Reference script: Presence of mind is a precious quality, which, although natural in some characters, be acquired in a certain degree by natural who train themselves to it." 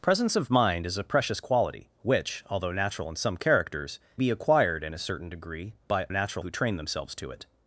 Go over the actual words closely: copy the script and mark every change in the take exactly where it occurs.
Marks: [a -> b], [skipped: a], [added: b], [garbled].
Presence of mind is a precious quality, which, although natural in some characters, be acquired in a certain degree by natural who train themselves to it."